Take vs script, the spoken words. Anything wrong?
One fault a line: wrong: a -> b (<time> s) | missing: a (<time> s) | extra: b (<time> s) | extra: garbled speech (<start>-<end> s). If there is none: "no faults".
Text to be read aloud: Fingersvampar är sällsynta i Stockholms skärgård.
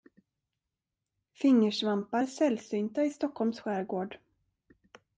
no faults